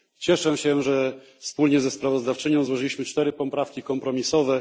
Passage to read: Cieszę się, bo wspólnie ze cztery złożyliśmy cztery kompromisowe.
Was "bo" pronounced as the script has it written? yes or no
no